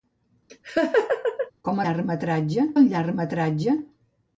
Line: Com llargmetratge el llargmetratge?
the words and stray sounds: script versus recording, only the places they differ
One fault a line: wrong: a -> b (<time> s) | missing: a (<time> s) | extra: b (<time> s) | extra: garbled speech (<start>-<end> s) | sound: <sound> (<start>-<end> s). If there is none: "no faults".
sound: laugh (0.5-1.5 s)